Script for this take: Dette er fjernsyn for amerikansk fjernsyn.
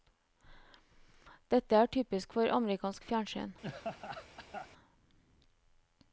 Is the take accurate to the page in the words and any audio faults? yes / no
no